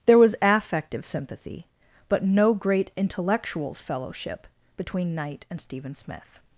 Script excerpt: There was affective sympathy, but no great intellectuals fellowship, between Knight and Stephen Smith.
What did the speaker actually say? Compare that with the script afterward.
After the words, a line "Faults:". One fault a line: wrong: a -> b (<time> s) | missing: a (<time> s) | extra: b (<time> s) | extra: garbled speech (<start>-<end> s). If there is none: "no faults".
There was affective sympathy, but no great intellectuals fellowship, between Knight and Stephen Smith.
Faults:
no faults